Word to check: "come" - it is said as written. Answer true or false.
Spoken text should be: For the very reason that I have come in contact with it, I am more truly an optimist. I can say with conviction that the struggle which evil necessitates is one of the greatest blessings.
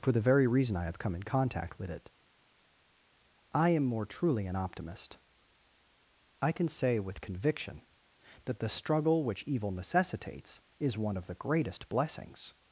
true